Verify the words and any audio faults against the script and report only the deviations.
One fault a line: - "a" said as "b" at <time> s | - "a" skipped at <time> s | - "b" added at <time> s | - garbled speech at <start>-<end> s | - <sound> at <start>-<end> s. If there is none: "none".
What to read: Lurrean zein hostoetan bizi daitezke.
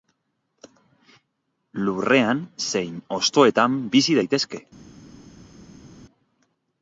none